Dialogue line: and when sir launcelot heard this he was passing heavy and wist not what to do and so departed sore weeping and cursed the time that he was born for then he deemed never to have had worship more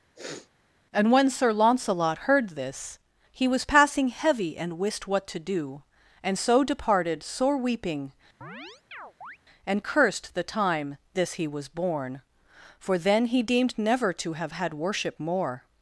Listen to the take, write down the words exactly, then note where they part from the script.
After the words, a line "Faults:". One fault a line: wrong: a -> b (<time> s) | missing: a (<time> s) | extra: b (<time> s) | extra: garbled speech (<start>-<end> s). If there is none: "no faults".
and when sir launcelot heard this he was passing heavy and wist what to do and so departed sore weeping and cursed the time this he was born for then he deemed never to have had worship more
Faults:
missing: not (5.1 s)
wrong: that -> this (11.1 s)